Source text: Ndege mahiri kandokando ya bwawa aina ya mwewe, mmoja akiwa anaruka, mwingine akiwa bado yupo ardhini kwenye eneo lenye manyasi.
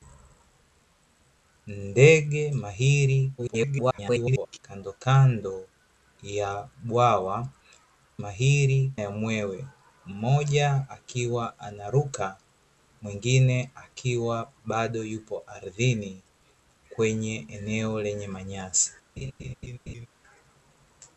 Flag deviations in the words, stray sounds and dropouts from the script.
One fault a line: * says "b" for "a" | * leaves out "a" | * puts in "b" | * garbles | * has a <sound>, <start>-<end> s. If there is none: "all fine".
* garbles
* says "mahiri" for "aina"
* has a laugh, 19.2-20.1 s